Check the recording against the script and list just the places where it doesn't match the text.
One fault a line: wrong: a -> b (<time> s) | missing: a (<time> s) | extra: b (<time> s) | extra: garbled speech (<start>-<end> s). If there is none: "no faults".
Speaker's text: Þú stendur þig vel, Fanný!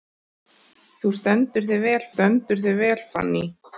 extra: stendur þig vel (2.1 s)